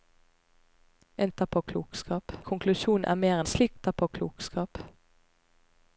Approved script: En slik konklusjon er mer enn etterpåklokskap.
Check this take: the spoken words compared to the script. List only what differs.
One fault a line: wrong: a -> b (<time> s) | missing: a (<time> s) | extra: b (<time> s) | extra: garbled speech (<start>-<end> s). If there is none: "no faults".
wrong: slik -> etterpåklokskap (1.3 s)
wrong: enn -> slik (3.4 s)